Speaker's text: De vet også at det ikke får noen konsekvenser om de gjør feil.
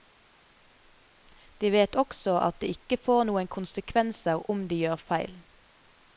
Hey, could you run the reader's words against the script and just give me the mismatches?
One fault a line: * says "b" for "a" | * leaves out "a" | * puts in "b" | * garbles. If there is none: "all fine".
all fine